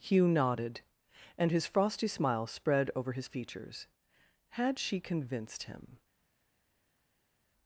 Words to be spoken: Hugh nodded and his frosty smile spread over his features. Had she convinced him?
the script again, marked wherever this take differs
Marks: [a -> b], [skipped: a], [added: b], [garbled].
Hugh nodded and his frosty smile spread over his features. Had she convinced him?